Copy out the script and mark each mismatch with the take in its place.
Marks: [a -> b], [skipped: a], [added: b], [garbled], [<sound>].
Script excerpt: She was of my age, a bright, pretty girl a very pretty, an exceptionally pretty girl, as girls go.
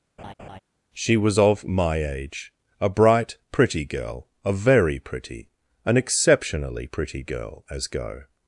[laugh] She was of my age, a bright, pretty girl a very pretty, an exceptionally pretty girl, as [skipped: girls] go.